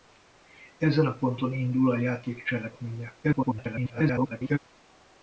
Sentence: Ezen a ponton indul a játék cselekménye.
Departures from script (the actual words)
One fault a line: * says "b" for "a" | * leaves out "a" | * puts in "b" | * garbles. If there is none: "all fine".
* garbles